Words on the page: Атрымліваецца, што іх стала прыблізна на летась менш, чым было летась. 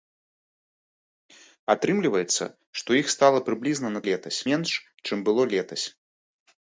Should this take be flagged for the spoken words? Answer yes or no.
no